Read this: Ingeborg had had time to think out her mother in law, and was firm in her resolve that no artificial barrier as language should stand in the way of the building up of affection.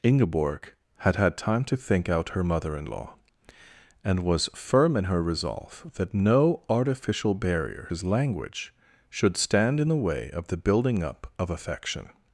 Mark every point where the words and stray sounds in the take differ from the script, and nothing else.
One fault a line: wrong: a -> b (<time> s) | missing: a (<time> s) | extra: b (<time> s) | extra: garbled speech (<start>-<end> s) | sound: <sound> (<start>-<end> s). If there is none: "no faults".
no faults